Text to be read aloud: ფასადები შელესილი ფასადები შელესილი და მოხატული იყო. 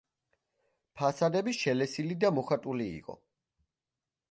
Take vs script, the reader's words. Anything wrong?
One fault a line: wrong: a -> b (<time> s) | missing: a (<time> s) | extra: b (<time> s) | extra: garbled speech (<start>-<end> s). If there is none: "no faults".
missing: ფასადები შელესილი (2.2 s)